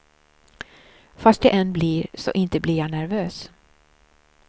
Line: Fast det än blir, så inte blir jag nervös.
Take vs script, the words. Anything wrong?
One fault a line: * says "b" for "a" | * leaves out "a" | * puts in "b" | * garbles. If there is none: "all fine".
all fine